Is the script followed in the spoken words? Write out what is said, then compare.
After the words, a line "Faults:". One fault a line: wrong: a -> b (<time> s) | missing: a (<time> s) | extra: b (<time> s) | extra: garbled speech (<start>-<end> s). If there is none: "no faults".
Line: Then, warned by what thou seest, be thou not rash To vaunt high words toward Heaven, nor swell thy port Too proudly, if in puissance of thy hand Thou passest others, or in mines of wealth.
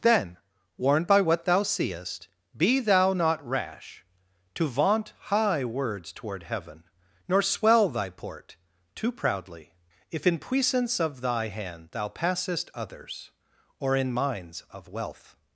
Then, warned by what thou seest, be thou not rash To vaunt high words toward Heaven, nor swell thy port Too proudly, if in puissance of thy hand Thou passest others, or in mines of wealth.
Faults:
no faults